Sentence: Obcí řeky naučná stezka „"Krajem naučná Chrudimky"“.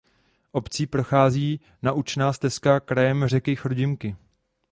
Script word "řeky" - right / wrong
wrong